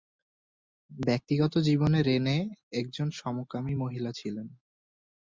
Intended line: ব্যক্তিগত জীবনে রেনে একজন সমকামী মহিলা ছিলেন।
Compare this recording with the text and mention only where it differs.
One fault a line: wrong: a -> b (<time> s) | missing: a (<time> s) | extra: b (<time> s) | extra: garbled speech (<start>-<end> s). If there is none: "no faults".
no faults